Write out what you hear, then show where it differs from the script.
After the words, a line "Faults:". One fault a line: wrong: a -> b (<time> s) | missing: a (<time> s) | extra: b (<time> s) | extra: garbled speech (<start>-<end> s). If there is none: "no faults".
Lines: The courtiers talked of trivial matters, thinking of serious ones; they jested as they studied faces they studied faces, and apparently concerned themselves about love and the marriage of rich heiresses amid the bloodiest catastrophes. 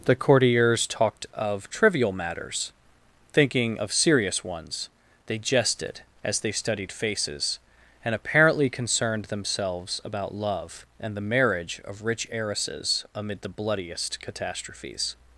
The courtiers talked of trivial matters, thinking of serious ones; they jested as they studied faces, and apparently concerned themselves about love and the marriage of rich heiresses amid the bloodiest catastrophes.
Faults:
missing: they studied faces (7.6 s)